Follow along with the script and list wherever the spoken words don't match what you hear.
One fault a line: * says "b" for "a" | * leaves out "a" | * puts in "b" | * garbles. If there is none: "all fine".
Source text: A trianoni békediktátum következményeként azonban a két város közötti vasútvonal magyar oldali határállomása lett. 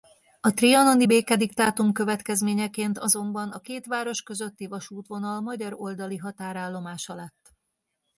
all fine